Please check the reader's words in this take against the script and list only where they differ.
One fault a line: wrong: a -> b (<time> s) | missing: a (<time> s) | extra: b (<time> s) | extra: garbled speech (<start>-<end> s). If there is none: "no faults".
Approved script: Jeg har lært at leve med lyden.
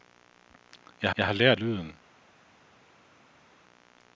extra: jeg (1.2 s)
missing: at leve med (1.6 s)